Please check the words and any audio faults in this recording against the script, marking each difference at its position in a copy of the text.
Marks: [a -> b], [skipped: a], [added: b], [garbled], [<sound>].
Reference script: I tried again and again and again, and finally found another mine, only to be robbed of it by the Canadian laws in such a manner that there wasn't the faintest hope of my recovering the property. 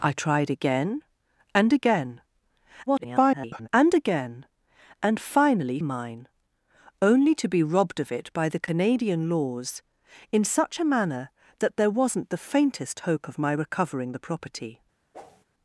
I tried again and again [garbled] and again, and finally [skipped: found another] mine, only to be robbed of it by the Canadian laws in such a manner that there wasn't the faintest hope of my recovering the property. [whoosh]